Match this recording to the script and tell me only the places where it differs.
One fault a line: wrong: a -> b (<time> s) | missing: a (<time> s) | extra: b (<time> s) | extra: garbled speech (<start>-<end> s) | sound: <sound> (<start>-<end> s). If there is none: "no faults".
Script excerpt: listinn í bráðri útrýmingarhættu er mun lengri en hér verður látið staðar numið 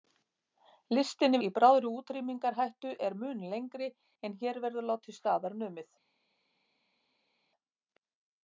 no faults